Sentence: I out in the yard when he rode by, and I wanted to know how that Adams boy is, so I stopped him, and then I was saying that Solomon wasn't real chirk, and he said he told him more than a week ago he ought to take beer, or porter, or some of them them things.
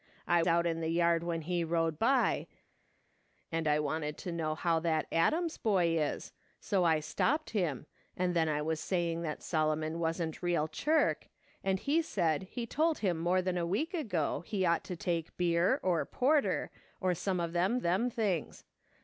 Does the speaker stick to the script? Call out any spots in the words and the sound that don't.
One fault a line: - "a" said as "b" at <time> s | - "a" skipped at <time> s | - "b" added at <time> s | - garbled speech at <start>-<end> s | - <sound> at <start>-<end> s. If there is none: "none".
none